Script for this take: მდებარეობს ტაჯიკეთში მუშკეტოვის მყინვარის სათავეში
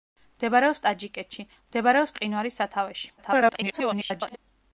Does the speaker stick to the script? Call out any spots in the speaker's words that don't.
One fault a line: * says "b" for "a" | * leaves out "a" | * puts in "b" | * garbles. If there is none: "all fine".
* says "მდებარეობს" for "მუშკეტოვის"
* garbles